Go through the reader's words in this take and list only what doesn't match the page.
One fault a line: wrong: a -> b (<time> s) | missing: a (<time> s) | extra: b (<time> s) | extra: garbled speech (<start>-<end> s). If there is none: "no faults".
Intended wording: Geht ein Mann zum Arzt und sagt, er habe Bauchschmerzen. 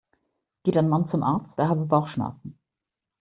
missing: und sagt (1.5 s)